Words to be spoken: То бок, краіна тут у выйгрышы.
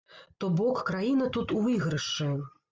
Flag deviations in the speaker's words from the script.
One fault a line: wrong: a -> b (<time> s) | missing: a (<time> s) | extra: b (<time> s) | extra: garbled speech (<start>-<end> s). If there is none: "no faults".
no faults